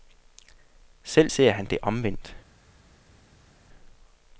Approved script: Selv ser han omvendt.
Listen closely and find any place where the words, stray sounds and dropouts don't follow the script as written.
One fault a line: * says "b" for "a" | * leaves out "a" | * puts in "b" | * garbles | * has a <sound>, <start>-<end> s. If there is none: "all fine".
* puts in "det"